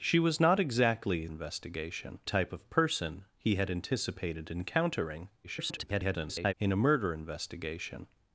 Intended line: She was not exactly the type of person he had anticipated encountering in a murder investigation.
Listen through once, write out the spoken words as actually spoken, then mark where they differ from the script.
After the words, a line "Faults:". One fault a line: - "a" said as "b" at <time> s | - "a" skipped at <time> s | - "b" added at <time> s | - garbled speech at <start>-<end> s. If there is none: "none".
She was not exactly investigation type of person he had anticipated encountering [garbled] in a murder investigation.
Faults:
- "the" said as "investigation" at 1.3 s
- garbled speech at 5.4-6.5 s